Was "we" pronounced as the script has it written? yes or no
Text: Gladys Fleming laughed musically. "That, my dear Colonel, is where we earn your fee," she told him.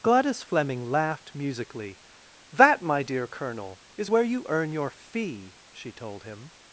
no